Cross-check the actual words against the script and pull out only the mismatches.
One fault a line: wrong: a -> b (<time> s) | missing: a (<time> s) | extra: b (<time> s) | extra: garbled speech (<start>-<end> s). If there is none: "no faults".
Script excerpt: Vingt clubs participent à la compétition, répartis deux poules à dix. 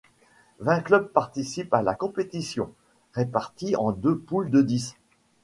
extra: en (3.7 s)
wrong: à -> de (4.5 s)